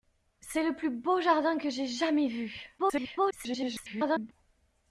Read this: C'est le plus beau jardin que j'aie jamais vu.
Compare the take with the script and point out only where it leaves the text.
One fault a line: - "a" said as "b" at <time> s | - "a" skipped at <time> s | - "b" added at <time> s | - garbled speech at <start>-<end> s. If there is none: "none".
- garbled speech at 2.8-4.3 s